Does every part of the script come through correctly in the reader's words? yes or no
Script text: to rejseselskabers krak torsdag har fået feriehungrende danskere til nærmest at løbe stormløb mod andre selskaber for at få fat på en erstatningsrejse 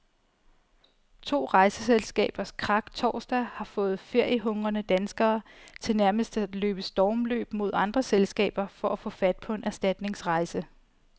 yes